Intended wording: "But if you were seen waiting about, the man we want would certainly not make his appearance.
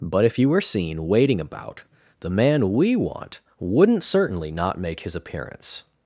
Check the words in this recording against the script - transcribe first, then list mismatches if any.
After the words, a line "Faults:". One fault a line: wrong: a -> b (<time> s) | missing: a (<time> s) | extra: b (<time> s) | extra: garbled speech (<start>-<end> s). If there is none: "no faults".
"But if you were seen waiting about, the man we want wouldn't certainly not make his appearance.
Faults:
wrong: would -> wouldn't (3.6 s)